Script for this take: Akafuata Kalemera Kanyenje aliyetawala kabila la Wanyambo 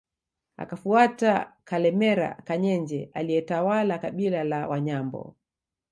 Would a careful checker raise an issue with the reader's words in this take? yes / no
no